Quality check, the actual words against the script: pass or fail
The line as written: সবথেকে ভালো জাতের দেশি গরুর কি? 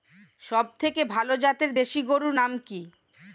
fail